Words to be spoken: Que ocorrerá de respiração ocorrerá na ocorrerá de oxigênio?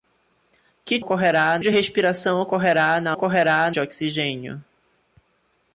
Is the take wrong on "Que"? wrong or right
right